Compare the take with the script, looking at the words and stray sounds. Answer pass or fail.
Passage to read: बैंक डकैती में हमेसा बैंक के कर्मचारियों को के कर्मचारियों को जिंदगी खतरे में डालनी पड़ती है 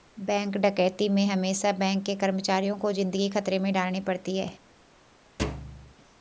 fail